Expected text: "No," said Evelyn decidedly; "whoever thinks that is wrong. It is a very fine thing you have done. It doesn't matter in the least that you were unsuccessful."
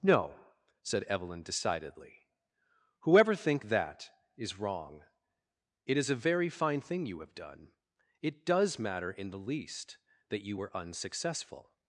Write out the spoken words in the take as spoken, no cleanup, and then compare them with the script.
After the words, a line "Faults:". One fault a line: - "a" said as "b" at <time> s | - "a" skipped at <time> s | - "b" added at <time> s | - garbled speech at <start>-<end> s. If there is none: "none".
"No," said Evelyn decidedly; "whoever think that is wrong. It is a very fine thing you have done. It does matter in the least that you were unsuccessful."
Faults:
- "thinks" said as "think" at 3.4 s
- "doesn't" said as "does" at 8.4 s